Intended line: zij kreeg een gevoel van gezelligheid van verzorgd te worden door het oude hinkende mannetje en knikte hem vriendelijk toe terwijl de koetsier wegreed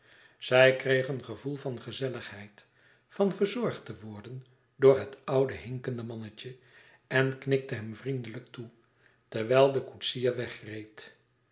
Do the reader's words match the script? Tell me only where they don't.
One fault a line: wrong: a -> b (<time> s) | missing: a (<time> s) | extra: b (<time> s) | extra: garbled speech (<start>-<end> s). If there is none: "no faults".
no faults